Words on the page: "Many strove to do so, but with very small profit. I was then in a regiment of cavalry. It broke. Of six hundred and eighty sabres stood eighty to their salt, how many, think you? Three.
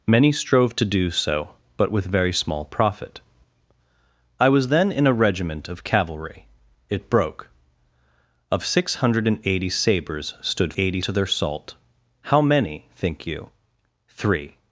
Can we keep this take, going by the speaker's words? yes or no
yes